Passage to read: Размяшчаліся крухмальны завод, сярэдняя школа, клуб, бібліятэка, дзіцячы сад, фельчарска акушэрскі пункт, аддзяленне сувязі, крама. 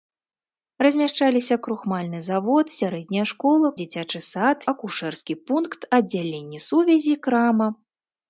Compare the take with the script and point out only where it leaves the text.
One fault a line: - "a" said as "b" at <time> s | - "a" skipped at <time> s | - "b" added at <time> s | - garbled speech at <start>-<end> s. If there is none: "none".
- "клуб бібліятэка" skipped at 3.7 s
- "фельчарска" skipped at 4.6 s